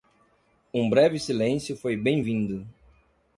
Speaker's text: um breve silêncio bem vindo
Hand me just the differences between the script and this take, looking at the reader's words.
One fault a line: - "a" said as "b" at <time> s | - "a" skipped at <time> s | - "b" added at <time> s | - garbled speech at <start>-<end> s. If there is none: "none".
- "foi" added at 1.8 s